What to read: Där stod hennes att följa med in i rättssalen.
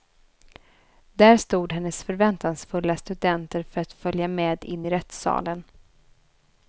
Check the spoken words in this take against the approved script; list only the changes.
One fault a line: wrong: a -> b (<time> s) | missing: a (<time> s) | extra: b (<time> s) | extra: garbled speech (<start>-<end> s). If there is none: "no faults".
extra: förväntansfulla studenter för (2.0 s)